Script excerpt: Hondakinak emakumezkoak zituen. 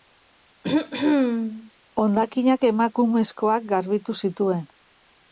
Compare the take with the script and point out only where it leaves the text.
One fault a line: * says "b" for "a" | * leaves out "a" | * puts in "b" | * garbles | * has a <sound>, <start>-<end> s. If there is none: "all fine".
* has a throat clearing, 0.6-1.7 s
* puts in "garbitu"